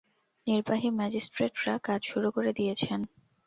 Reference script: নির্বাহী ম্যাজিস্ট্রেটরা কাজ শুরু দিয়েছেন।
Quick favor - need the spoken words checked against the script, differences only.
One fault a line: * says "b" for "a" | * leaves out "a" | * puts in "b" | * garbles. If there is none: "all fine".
* puts in "করে"